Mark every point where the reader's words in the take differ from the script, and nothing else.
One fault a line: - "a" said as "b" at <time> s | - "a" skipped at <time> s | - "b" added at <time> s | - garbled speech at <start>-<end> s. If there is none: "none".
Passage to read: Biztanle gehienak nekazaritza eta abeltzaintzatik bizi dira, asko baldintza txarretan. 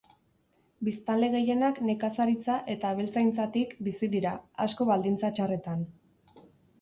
none